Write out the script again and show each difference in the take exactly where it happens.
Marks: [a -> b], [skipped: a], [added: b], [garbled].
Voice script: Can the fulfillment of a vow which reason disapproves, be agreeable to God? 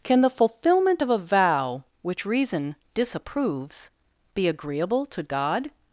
Can the fulfillment of a vow which reason disapproves, be agreeable to God?